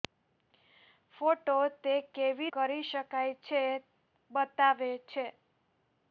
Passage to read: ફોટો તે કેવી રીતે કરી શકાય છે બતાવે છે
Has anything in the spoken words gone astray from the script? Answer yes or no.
yes